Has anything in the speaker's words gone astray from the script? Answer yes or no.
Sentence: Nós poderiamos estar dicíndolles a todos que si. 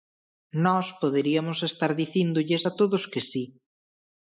no